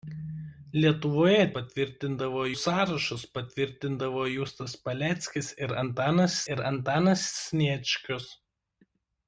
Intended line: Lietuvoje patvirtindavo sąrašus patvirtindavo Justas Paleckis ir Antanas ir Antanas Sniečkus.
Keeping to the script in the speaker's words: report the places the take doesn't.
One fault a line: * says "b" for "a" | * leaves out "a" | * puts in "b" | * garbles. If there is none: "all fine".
all fine